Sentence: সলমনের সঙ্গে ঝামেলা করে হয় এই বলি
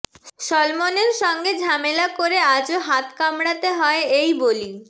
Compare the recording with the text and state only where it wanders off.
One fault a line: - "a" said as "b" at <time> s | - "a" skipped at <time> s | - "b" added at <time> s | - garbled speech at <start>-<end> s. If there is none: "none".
- "আজও হাত কামড়াতে" added at 2.6 s